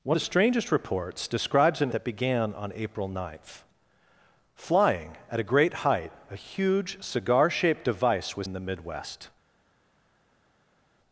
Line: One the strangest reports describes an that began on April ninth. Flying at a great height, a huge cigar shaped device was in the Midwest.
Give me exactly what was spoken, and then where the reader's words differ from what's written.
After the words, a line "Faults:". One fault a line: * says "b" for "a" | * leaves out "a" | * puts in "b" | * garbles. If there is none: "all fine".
One the strangest reports describes an that began on April ninth. Flying at a great height, a huge cigar shaped device was in the Midwest.
Faults:
all fine